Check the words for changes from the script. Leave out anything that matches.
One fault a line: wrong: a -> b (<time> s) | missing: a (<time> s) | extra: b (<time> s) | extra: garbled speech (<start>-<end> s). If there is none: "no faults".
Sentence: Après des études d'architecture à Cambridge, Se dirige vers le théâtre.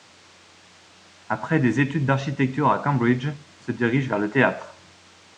no faults